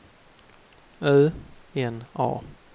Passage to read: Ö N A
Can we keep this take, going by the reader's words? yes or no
yes